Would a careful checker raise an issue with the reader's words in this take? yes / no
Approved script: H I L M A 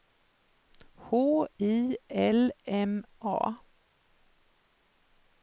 no